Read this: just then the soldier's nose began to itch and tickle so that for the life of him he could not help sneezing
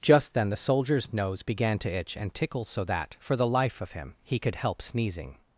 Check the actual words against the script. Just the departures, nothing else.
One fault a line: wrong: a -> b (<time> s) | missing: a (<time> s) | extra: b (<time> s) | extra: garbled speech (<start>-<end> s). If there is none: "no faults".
missing: not (4.5 s)